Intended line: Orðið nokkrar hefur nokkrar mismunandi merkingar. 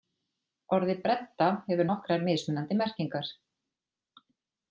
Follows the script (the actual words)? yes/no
no